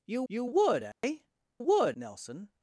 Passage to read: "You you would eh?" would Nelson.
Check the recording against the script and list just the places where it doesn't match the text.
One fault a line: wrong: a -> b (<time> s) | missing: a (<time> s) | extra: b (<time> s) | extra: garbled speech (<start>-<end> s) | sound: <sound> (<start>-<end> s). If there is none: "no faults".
sound: dropout (0.9-1.0 s)